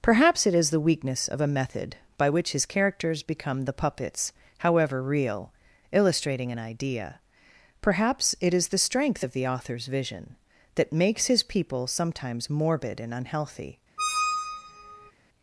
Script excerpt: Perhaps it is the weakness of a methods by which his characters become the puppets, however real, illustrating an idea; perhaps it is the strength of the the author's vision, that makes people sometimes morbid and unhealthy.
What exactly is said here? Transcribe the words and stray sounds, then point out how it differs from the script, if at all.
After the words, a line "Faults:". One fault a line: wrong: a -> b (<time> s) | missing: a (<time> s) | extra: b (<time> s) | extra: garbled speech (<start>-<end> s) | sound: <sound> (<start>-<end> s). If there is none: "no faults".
Perhaps it is the weakness of a method by which his characters become the puppets, however real, illustrating an idea; perhaps it is the strength of the author's vision, that makes his people sometimes morbid and unhealthy.
Faults:
wrong: methods -> method (1.5 s)
missing: the (9.5 s)
extra: his (11.3 s)
sound: squeak (14.0-15.1 s)